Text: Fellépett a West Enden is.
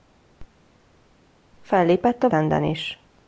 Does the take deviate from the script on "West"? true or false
true